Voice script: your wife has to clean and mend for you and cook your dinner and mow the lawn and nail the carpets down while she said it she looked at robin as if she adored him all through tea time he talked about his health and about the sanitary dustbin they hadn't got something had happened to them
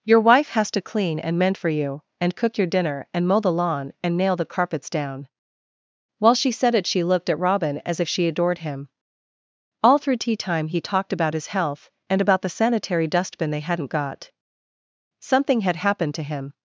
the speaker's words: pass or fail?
fail